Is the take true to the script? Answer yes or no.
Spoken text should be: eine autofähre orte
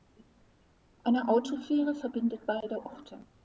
no